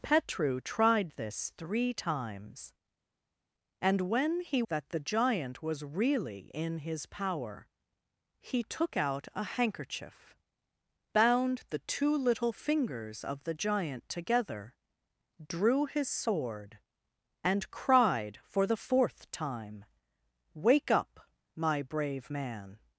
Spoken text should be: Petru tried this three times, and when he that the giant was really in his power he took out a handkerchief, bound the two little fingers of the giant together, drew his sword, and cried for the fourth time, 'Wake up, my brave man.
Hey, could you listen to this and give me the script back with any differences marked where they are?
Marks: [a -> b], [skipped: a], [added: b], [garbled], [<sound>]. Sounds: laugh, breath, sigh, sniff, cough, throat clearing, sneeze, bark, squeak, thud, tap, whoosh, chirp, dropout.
Petru tried this three times, and when he that the giant was really in his power he took out a handkerchief, bound the two little fingers of the giant together, drew his sword, and cried for the fourth time, 'Wake up, my brave man.